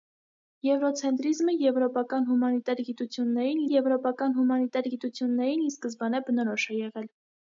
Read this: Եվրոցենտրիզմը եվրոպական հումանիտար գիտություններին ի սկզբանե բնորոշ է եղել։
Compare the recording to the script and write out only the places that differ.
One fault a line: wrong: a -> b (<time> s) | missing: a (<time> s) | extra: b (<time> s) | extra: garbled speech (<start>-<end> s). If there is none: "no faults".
extra: եվրոպական հումանիտար գիտություններին (3.7 s)